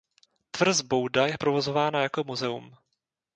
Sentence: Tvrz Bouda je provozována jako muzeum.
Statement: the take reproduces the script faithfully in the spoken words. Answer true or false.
true